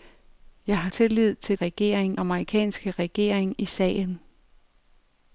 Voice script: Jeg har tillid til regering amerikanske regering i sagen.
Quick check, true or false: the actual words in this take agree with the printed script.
true